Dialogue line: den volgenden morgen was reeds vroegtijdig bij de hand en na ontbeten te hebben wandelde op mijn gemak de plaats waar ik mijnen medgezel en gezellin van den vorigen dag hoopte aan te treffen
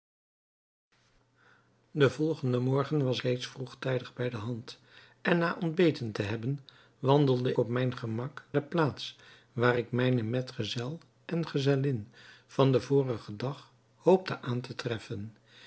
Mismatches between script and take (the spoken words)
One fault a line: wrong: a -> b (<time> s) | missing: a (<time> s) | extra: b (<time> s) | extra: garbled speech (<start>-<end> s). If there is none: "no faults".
no faults